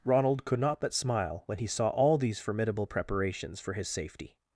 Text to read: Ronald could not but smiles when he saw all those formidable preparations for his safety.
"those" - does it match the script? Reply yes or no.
no